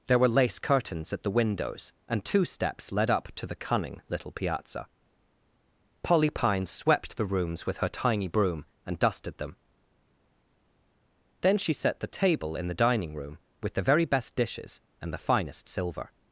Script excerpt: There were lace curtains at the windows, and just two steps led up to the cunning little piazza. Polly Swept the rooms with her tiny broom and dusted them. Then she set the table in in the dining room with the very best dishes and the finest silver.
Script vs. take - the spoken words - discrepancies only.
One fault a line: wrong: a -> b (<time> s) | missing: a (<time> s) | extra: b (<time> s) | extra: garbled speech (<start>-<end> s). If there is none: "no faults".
missing: just (2.2 s)
extra: Pine (6.3 s)
missing: in (12.7 s)